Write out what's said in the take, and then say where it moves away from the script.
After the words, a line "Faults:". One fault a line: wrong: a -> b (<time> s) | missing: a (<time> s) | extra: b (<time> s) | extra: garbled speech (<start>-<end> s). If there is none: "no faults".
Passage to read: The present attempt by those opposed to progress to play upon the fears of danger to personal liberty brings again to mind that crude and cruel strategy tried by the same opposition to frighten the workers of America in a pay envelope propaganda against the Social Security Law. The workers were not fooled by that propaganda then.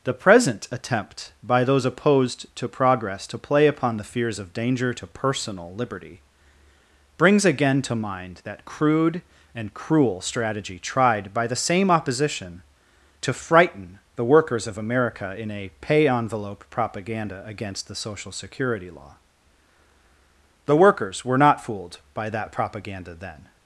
The present attempt by those opposed to progress to play upon the fears of danger to personal liberty brings again to mind that crude and cruel strategy tried by the same opposition to frighten the workers of America in a pay envelope propaganda against the Social Security Law. The workers were not fooled by that propaganda then.
Faults:
no faults